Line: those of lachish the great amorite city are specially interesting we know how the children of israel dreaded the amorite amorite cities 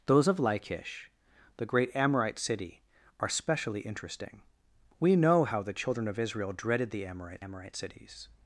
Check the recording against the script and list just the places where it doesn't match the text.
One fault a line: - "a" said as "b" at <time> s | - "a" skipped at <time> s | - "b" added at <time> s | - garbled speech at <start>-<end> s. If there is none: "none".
none